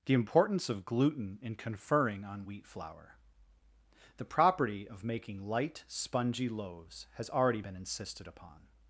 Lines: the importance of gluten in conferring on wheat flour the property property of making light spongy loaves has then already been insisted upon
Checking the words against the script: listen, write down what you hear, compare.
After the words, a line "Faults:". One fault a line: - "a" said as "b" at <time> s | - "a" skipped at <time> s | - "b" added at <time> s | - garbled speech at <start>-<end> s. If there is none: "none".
the importance of gluten in conferring on wheat flour the property of making light spongy loaves has already been insisted upon
Faults:
- "property" skipped at 4.9 s
- "then" skipped at 7.3 s